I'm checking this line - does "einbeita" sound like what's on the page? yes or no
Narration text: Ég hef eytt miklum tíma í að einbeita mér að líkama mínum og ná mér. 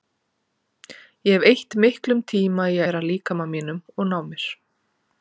no